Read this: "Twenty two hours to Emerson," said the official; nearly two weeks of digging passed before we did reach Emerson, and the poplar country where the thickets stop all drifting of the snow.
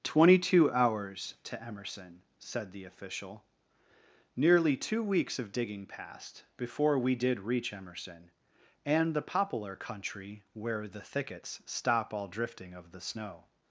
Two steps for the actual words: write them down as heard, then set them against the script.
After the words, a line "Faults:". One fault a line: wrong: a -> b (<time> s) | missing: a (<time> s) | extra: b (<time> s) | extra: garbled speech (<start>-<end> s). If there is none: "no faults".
"Twenty two hours to Emerson," said the official; nearly two weeks of digging passed before we did reach Emerson, and the poplar country where the thickets stop all drifting of the snow.
Faults:
no faults